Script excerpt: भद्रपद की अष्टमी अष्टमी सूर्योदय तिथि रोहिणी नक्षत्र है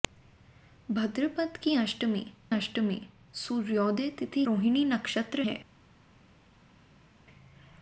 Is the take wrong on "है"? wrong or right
right